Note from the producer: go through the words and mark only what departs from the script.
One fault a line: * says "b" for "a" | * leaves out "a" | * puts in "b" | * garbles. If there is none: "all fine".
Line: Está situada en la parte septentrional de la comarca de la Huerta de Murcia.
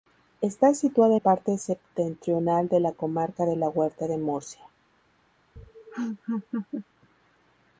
* leaves out "la"